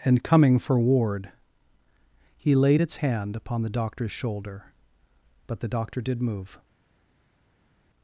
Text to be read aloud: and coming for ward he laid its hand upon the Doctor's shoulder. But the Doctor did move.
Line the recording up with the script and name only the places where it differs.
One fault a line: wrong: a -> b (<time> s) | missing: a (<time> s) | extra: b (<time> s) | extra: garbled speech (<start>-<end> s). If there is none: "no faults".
no faults